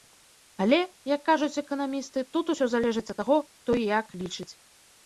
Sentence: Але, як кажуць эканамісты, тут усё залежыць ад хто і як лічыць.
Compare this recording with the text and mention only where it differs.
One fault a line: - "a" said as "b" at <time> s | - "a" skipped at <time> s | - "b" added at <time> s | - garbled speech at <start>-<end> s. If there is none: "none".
- "таго" added at 3.2 s